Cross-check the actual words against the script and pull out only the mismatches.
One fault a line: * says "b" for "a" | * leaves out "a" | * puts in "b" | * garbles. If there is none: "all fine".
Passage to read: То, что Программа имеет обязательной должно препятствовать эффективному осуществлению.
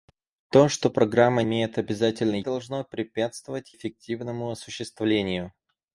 all fine